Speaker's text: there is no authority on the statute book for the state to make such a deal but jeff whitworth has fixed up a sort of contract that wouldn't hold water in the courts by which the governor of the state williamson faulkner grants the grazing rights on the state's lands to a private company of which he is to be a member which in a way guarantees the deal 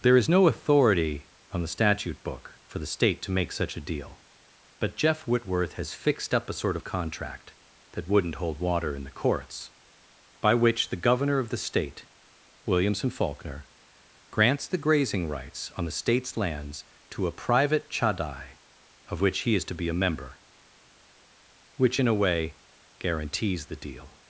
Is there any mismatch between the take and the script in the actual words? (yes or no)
yes